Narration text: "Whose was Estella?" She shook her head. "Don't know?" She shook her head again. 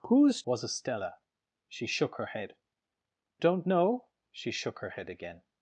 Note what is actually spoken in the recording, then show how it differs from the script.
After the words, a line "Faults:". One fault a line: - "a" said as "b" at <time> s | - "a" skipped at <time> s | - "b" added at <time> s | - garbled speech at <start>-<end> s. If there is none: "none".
"Whose was Estella?" She shook her head. "Don't know?" She shook her head again.
Faults:
none